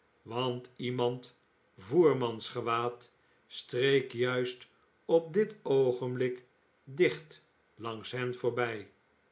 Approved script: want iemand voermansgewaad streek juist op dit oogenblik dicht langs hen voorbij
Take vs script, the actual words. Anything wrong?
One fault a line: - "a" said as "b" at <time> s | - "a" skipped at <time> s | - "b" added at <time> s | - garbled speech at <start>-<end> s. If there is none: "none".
none